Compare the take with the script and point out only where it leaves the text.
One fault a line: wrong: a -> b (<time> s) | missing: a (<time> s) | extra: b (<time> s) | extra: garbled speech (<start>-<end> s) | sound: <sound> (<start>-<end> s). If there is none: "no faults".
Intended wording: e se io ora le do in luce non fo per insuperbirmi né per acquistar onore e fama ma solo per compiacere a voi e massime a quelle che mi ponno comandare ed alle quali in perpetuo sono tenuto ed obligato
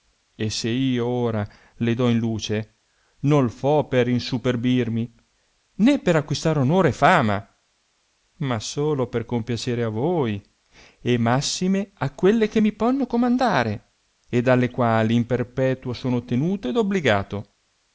no faults